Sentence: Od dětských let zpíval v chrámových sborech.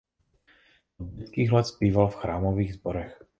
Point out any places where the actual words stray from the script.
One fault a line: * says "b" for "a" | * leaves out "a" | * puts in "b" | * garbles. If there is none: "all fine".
all fine